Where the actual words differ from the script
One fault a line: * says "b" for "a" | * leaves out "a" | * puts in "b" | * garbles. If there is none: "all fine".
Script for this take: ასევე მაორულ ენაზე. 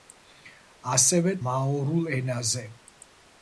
all fine